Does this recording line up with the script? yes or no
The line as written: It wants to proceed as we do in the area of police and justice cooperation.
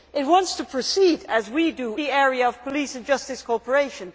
no